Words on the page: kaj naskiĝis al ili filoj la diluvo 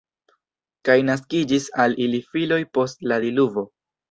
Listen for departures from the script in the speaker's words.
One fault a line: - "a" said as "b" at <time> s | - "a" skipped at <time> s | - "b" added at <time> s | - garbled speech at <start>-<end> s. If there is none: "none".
- "post" added at 2.8 s